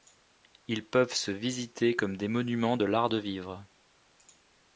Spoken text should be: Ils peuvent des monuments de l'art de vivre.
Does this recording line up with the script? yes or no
no